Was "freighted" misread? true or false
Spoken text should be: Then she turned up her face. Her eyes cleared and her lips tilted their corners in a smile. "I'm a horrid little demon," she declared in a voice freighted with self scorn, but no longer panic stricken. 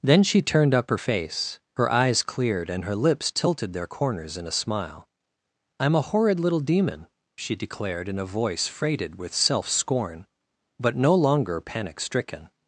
false